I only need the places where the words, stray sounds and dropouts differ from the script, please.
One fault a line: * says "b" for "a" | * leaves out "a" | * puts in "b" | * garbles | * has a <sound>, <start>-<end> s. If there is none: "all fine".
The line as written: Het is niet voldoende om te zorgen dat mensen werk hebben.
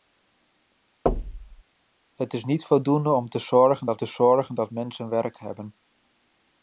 * has a thud, 1.1-1.6 s
* puts in "te zorgen dat"